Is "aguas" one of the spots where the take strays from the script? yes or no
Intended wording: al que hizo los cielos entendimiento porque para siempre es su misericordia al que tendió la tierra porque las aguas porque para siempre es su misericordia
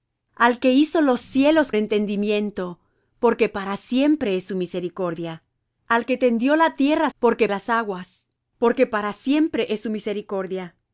no